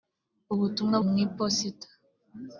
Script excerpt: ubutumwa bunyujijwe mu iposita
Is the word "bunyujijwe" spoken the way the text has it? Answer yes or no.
no